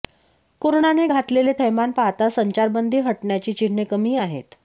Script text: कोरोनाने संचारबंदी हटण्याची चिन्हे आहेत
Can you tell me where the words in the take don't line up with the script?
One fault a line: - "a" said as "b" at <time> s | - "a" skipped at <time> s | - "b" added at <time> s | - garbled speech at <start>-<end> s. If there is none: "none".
- "घातलेले थैमान पाहता" added at 1.1 s
- "कमी" added at 3.8 s